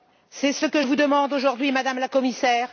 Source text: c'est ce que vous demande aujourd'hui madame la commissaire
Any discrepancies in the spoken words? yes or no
no